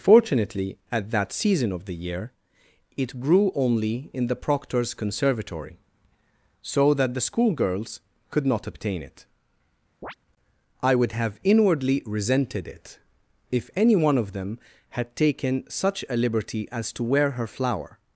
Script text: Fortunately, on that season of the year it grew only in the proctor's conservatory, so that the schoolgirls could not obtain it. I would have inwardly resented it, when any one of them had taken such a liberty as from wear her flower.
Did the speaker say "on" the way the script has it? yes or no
no